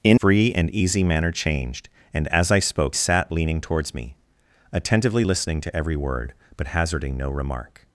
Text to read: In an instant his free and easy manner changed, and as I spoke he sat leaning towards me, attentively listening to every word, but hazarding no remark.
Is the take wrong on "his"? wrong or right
wrong